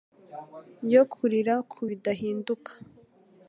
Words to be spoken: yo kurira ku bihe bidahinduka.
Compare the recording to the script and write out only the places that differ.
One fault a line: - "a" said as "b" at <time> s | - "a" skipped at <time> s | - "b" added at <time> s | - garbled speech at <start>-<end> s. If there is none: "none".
- "bihe" skipped at 1.8 s